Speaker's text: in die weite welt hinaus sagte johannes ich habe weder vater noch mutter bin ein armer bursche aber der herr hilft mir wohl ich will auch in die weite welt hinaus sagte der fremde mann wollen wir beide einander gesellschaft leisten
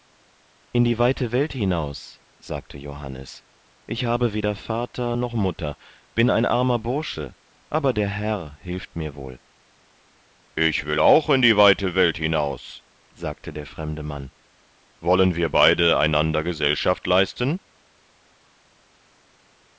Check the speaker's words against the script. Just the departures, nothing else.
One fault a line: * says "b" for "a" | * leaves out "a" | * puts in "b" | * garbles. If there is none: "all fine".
all fine